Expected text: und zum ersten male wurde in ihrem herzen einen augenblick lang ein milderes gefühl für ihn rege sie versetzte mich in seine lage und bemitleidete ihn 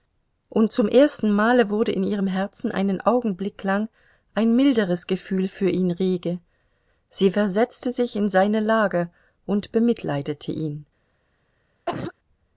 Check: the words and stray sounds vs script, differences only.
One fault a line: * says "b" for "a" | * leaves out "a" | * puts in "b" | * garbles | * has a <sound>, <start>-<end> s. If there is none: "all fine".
* says "sich" for "mich"
* has a cough, 11.9-12.1 s